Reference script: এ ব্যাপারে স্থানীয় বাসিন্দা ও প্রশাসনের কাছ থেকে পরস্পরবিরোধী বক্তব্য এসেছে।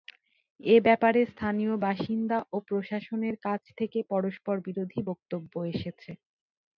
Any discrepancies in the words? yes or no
no